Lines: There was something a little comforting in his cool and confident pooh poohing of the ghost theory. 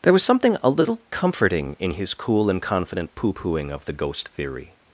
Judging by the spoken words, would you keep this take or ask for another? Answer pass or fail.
pass